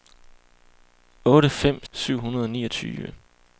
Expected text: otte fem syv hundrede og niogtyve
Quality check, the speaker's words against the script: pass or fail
pass